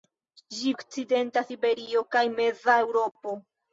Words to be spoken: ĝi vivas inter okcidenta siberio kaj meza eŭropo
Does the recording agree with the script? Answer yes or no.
no